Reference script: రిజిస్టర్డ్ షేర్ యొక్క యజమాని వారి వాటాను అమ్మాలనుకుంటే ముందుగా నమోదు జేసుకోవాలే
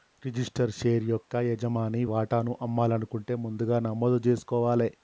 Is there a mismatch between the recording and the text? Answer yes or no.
yes